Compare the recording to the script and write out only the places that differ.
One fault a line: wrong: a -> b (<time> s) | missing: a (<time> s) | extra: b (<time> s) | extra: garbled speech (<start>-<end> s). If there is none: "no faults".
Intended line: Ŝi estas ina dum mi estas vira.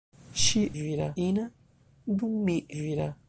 wrong: estas -> vira (0.8 s)
missing: estas (2.6 s)